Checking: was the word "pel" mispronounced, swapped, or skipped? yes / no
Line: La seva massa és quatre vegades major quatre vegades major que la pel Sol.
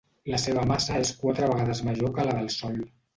yes